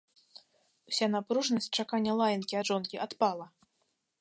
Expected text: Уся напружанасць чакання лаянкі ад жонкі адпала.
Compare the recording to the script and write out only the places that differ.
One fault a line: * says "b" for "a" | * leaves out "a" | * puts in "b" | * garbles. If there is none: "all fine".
all fine